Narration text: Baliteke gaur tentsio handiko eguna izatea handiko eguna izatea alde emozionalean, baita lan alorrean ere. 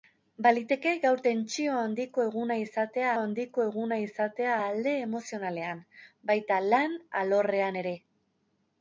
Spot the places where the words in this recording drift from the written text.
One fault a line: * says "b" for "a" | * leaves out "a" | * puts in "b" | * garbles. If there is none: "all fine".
all fine